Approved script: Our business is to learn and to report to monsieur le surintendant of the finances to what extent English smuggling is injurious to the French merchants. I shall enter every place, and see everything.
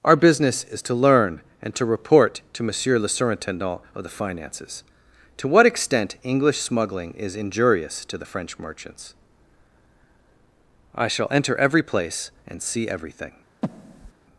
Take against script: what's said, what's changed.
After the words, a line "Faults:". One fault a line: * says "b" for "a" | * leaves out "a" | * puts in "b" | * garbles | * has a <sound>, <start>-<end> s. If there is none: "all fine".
Our business is to learn and to report to monsieur le surintendant of the finances to what extent English smuggling is injurious to the French merchants. I shall enter every place, and see everything.
Faults:
* has a breath, 13.6-14.1 s